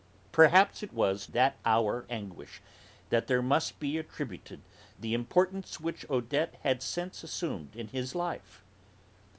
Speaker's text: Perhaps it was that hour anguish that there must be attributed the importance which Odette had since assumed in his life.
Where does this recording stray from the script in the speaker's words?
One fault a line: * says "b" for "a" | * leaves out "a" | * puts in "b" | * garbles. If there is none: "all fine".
all fine